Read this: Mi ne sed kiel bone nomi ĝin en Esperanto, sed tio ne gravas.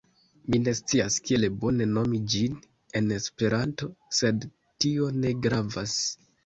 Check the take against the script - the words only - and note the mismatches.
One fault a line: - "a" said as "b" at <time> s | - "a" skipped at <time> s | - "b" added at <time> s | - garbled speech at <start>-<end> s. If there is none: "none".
- "sed" said as "scias" at 0.8 s